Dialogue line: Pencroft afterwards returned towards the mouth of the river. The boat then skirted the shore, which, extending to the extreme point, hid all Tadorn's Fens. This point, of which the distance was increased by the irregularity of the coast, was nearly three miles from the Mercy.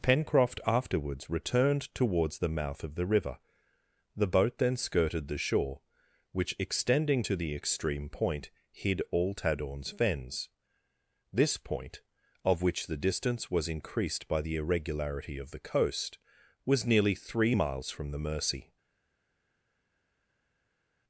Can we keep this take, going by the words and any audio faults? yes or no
yes